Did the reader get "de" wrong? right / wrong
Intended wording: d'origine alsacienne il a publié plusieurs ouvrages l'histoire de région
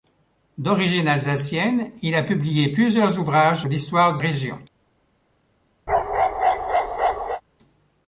right